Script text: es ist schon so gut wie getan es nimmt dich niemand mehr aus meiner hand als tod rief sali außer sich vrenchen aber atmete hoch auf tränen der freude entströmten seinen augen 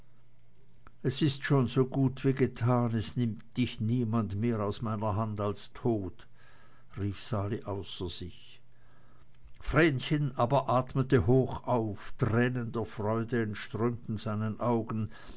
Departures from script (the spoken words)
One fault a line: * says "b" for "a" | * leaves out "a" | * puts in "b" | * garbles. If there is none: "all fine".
all fine